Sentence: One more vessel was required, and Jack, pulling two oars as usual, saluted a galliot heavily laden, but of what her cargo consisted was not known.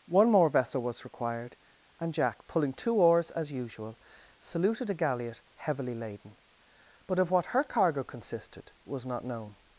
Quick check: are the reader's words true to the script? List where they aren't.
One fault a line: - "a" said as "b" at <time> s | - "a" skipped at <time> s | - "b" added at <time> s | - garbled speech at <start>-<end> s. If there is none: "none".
none